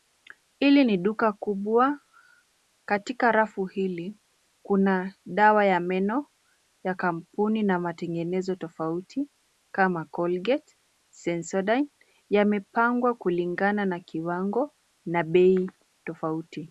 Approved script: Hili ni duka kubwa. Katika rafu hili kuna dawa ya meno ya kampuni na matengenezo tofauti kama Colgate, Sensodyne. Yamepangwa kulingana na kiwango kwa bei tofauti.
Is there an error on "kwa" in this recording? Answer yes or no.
yes